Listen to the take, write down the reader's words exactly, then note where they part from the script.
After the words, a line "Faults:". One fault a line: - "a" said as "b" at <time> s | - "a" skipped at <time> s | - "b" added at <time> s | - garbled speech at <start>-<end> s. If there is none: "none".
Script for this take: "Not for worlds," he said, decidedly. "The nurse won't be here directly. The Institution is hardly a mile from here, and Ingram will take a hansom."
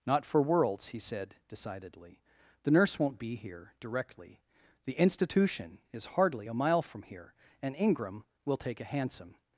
"Not for worlds," he said, decidedly. "The nurse won't be here directly. The Institution is hardly a mile from here, and Ingram will take a hansom."
Faults:
none